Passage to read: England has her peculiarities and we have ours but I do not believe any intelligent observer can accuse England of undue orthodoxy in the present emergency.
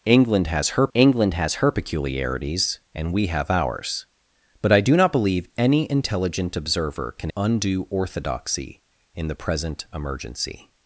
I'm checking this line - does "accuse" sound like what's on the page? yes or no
no